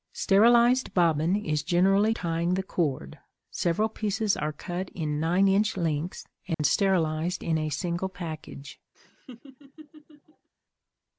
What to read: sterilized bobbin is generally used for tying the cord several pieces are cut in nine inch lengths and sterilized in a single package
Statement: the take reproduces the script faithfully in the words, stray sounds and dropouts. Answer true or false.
false